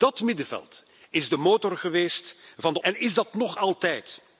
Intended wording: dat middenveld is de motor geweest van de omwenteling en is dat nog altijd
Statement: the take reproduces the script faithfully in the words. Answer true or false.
false